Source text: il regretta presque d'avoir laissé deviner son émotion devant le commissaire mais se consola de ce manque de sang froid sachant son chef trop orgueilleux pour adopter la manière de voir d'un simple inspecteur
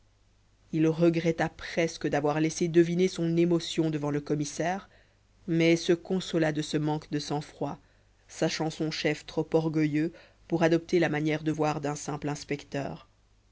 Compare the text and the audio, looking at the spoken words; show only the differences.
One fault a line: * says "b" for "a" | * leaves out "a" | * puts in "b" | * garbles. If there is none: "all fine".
all fine